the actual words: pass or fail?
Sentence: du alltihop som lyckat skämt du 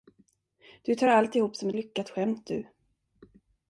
fail